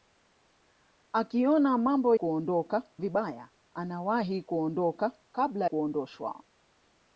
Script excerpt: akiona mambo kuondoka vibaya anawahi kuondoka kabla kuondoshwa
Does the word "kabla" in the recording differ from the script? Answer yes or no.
no